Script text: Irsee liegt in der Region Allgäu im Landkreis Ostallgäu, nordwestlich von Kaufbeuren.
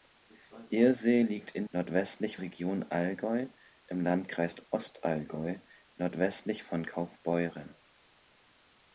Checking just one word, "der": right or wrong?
wrong